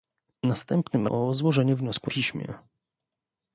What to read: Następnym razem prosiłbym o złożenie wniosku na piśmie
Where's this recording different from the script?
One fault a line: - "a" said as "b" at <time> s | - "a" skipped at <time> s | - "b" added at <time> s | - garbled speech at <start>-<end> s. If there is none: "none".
- "razem prosiłbym" skipped at 1.1 s
- "na" skipped at 2.1 s